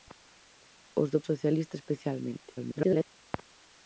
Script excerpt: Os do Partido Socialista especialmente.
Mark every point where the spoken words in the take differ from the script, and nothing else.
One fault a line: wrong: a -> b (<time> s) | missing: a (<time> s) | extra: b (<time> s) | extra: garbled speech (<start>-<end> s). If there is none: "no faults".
missing: Partido (1.2 s)
extra: garbled speech (2.6-3.1 s)